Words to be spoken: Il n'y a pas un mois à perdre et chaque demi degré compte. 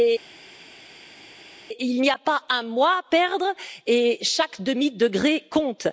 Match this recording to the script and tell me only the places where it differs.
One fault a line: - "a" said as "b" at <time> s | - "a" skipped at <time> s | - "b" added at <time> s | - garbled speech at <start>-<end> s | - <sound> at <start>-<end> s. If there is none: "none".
none